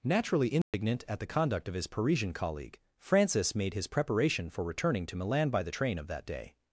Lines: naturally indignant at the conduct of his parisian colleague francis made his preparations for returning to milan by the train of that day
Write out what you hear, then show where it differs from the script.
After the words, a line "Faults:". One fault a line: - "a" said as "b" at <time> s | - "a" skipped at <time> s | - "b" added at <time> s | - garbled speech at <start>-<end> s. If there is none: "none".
naturally indignant at the conduct of his parisian colleague francis made his preparation for returning to milan by the train of that day
Faults:
- "preparations" said as "preparation" at 3.9 s